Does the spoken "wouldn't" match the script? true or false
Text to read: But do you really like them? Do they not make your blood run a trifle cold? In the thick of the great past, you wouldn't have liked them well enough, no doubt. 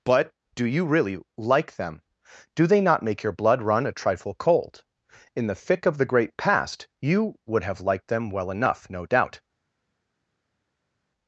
false